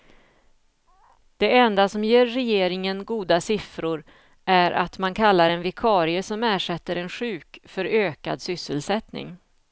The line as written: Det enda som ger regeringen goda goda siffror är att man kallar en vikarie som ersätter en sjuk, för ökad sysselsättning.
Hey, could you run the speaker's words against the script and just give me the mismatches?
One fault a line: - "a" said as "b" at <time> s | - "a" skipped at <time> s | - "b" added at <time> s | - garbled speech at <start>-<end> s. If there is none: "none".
- "goda" skipped at 3.4 s